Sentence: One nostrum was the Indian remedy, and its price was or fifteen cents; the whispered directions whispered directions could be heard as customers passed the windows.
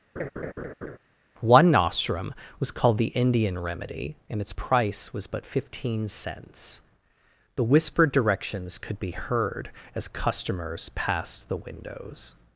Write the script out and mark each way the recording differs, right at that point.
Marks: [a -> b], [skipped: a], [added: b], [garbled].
One nostrum was [added: called] the Indian remedy, and its price was [or -> but] fifteen cents; the whispered directions [skipped: whispered directions] could be heard as customers passed the windows.